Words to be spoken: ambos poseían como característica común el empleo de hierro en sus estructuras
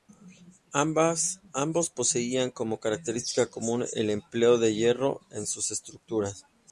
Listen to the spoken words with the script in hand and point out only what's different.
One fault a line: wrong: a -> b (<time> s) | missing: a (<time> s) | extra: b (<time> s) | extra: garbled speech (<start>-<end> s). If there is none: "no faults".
no faults